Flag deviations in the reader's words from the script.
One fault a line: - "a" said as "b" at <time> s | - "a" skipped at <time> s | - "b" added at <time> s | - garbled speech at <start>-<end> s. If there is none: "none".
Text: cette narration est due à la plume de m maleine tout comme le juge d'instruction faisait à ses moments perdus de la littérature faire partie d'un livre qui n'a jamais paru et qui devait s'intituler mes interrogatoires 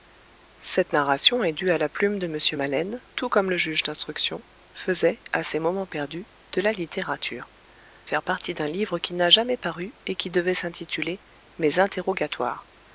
none